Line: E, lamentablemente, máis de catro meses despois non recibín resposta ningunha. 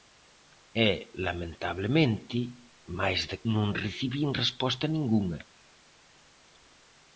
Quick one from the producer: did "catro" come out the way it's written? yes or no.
no